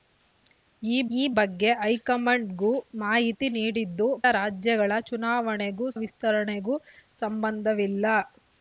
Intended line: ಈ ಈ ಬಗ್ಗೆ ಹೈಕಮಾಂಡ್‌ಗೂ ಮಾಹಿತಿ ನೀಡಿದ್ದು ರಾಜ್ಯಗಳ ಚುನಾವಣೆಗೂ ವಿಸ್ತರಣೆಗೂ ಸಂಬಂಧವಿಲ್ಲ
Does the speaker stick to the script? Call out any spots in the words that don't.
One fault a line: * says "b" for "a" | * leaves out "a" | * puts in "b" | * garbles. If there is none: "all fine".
all fine